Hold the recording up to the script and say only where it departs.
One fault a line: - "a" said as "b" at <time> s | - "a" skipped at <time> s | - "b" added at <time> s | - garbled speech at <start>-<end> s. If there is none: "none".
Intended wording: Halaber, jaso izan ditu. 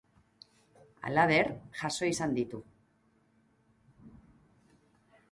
none